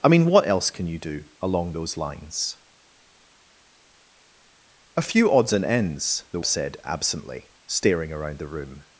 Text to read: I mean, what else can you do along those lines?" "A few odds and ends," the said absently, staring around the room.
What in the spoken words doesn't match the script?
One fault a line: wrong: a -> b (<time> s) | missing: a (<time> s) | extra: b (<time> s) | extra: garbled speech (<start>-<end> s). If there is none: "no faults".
no faults